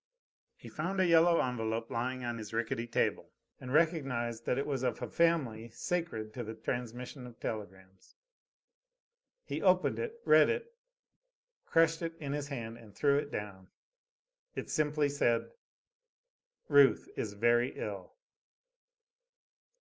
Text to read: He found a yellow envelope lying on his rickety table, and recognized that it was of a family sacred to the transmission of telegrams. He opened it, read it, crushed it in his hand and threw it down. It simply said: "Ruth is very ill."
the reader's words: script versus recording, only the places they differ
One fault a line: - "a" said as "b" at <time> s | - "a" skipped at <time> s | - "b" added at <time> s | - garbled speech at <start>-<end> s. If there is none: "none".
none